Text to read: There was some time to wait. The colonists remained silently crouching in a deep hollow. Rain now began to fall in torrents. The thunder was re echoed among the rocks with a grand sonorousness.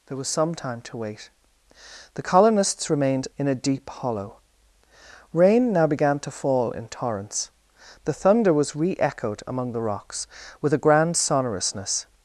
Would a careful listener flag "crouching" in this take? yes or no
yes